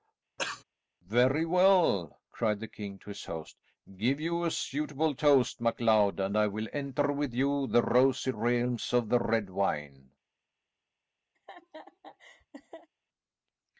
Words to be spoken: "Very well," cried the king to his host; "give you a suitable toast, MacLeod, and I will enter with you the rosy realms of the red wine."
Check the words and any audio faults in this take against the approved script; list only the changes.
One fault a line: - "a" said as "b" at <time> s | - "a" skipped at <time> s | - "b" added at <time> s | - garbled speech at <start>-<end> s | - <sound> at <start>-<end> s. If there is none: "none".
- cough at 0.4-0.6 s
- laugh at 11.3-12.9 s